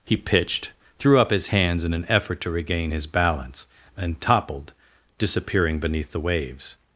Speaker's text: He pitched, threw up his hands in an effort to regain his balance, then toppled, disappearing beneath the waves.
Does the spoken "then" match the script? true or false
false